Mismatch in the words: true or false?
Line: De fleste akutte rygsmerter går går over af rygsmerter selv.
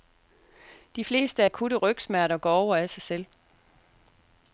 true